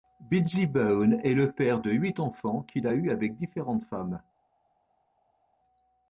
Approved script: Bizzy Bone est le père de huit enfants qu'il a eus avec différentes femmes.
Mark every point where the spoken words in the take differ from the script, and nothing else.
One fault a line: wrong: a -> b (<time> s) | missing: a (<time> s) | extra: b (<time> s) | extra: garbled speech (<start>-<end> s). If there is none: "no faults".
no faults